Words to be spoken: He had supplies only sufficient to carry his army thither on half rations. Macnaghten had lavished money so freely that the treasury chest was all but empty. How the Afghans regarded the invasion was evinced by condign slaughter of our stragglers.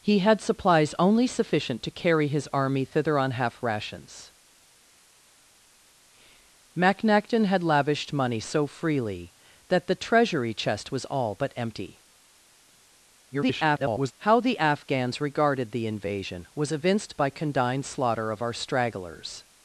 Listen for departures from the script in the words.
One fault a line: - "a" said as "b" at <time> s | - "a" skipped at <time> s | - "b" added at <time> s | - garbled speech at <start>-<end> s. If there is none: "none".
- garbled speech at 13.3-14.1 s